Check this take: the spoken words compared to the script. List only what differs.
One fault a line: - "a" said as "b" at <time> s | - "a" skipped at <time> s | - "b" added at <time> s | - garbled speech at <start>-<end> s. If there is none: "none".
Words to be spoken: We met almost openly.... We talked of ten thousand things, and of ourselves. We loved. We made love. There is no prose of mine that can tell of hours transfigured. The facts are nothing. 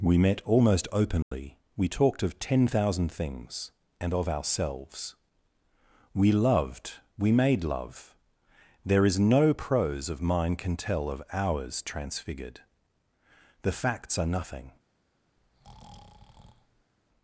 - "that" skipped at 10.6 s